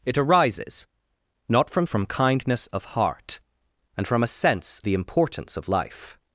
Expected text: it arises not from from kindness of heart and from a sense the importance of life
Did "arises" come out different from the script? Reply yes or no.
no